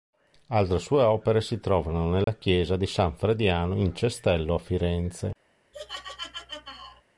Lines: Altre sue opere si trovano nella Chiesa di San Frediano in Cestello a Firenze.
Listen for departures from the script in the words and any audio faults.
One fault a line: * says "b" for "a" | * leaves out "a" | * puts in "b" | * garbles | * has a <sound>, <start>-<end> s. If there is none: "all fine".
* has a dropout, 2.2-2.3 s
* has a laugh, 5.7-7.0 s